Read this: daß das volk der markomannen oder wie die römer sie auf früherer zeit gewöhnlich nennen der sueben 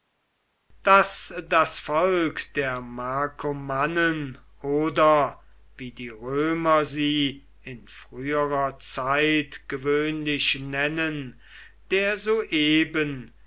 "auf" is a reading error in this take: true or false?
true